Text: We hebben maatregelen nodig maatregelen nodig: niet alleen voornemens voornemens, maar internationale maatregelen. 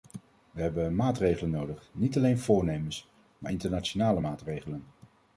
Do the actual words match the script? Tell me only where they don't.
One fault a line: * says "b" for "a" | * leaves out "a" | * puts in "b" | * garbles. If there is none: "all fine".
* leaves out "maatregelen nodig"
* leaves out "voornemens"